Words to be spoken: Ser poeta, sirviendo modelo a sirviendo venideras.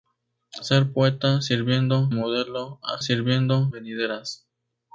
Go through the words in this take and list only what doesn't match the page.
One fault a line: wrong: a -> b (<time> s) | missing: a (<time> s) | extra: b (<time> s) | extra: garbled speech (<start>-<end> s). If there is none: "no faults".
no faults